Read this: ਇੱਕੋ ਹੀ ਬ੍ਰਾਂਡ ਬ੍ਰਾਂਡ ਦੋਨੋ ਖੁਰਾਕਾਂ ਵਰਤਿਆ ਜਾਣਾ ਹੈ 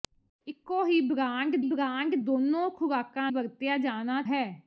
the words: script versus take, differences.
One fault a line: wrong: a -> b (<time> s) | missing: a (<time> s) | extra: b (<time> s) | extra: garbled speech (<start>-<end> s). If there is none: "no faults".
no faults